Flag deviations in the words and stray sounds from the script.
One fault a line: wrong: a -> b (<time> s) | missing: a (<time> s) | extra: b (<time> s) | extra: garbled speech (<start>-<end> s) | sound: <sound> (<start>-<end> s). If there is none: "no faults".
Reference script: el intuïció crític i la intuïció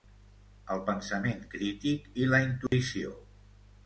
wrong: intuïció -> pensament (0.8 s)
sound: dropout (2.7-2.7 s)